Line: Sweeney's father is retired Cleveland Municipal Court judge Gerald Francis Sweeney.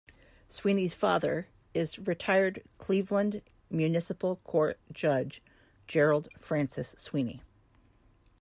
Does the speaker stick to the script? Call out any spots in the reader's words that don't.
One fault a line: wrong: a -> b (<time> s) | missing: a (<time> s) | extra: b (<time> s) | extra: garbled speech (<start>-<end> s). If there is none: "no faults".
no faults